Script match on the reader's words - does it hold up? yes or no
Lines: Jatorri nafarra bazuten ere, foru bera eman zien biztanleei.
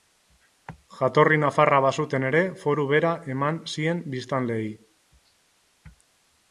yes